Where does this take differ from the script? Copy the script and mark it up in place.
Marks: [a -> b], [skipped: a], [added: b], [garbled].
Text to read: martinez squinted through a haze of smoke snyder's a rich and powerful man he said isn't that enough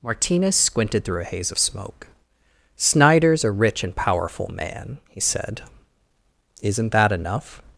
martinez squinted through a haze of smoke snyder's a rich and powerful man he said isn't that enough